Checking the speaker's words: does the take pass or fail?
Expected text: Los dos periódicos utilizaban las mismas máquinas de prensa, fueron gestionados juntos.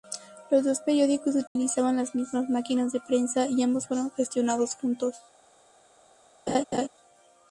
fail